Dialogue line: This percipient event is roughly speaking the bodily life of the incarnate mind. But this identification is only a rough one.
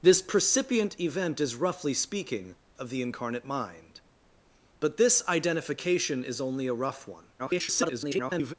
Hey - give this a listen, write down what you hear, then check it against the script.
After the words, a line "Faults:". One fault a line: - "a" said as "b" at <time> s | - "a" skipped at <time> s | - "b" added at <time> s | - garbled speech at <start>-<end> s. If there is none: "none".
This percipient event is roughly speaking of the incarnate mind. But this identification is only a rough one. [garbled]
Faults:
- "the bodily life" skipped at 2.5 s
- garbled speech at 7.4-8.5 s